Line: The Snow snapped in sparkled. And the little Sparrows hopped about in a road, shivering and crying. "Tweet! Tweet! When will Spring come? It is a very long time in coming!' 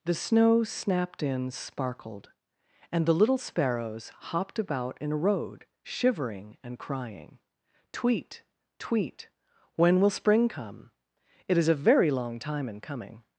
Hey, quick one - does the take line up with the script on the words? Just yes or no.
yes